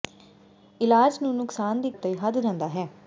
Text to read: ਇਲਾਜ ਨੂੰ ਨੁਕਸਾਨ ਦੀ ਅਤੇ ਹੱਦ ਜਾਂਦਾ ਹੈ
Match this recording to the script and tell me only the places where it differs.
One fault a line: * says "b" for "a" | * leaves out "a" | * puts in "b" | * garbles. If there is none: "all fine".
all fine